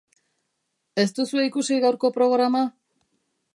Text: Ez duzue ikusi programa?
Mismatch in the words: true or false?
true